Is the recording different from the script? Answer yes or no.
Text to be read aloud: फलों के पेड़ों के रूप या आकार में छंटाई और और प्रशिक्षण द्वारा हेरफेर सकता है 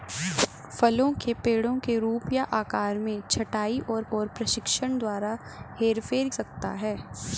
no